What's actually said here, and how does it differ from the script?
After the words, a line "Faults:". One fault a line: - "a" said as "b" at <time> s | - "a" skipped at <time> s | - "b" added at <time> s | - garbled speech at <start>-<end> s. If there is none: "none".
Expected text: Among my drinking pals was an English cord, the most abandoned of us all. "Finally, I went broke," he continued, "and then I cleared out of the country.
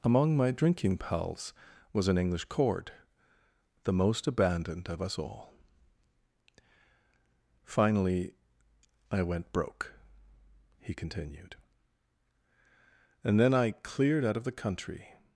Among my drinking pals was an English cord, the most abandoned of us all. "Finally, I went broke," he continued, "and then I cleared out of the country.
Faults:
none